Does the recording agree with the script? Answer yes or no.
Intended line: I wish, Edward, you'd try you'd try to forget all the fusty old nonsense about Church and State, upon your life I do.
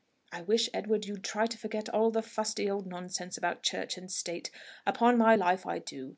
no